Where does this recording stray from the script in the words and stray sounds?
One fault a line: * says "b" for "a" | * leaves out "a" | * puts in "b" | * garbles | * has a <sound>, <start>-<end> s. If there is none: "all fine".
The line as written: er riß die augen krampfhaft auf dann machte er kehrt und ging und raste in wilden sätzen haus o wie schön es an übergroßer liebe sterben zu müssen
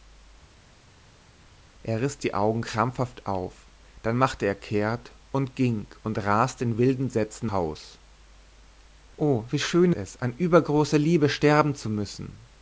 all fine